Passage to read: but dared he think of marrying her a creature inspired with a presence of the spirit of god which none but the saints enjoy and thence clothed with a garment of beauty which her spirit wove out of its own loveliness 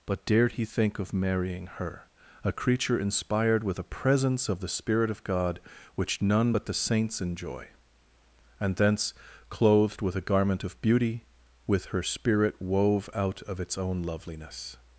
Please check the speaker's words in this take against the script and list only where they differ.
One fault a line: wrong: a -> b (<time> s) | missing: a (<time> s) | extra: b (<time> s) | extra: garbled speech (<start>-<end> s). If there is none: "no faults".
wrong: which -> with (11.7 s)